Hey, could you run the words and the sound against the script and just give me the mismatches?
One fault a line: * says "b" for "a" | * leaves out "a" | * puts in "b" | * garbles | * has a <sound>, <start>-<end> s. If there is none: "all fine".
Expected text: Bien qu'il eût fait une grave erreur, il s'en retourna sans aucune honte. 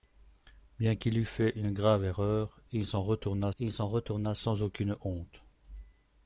* puts in "il s'en retourna"